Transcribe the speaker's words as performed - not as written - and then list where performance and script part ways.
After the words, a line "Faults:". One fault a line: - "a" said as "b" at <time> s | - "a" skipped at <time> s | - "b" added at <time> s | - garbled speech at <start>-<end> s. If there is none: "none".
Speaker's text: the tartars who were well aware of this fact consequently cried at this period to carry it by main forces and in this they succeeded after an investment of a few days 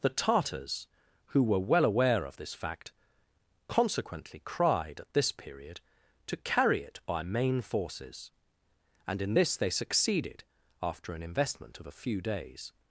the tartars who were well aware of this fact consequently cried at this period to carry it by main forces and in this they succeeded after an investment of a few days
Faults:
none